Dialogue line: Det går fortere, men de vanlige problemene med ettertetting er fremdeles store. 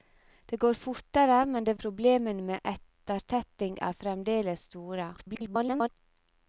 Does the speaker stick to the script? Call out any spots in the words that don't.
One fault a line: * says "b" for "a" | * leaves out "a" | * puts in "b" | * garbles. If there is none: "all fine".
* leaves out "vanlige"
* garbles